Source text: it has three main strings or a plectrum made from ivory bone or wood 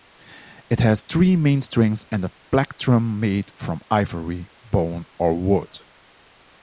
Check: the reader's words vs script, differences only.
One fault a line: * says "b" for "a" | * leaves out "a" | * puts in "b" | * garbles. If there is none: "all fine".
* says "and" for "or"